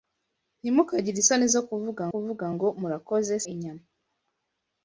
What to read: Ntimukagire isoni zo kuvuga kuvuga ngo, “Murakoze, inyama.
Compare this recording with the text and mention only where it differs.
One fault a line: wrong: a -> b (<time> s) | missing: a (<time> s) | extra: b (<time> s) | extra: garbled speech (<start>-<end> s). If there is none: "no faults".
no faults